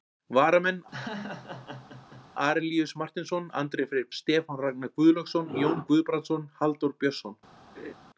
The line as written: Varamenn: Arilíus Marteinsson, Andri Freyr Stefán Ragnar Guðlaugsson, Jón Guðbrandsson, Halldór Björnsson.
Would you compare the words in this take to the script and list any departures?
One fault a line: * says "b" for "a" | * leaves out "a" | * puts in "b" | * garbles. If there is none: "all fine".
all fine